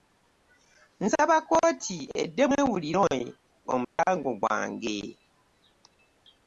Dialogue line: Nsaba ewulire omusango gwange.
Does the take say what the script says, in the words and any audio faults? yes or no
no